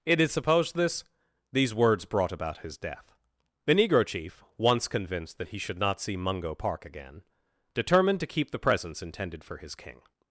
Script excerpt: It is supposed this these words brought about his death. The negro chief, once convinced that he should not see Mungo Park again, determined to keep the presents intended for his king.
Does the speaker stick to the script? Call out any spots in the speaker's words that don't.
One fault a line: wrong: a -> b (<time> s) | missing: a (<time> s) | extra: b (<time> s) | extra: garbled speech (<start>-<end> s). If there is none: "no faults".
no faults